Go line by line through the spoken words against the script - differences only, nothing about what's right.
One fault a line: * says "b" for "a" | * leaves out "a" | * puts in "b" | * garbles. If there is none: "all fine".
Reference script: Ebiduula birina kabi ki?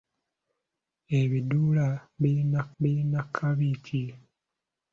* puts in "birina"